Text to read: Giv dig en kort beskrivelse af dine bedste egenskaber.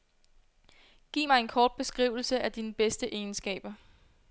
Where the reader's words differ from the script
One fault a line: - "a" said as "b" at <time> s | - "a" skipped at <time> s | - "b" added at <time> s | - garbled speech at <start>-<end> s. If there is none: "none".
- "dig" said as "mig" at 1.3 s